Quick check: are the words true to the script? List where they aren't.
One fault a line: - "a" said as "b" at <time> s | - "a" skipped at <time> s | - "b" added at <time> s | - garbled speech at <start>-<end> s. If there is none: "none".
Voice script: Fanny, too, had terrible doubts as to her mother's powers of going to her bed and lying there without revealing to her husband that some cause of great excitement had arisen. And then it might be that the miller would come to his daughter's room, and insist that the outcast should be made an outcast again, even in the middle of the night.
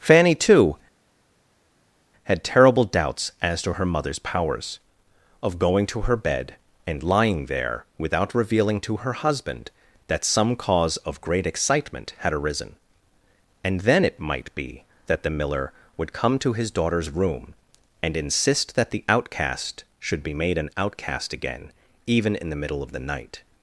none